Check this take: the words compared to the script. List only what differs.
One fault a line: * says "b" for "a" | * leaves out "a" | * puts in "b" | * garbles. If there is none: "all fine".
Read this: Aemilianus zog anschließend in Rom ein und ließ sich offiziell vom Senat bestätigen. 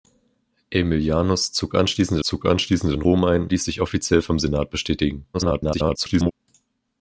* puts in "zog anschließend"
* leaves out "und"
* garbles